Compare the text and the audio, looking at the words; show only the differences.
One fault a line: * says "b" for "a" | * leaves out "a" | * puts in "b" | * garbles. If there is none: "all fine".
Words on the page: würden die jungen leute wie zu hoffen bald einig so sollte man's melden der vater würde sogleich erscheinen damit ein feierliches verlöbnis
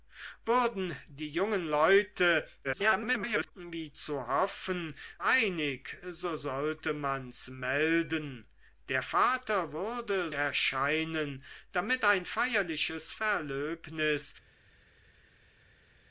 * garbles
* leaves out "bald"
* leaves out "sogleich"